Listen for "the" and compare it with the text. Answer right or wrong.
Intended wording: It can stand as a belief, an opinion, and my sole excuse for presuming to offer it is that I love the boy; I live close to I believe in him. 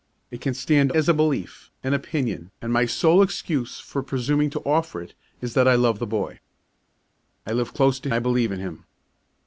right